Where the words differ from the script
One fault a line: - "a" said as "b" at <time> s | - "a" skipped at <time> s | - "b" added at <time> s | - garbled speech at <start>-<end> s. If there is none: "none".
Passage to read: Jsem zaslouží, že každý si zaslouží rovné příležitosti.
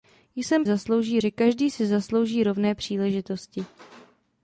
none